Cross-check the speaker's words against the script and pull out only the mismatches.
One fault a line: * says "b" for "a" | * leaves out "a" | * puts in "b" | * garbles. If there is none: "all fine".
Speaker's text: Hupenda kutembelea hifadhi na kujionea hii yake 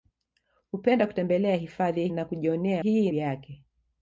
all fine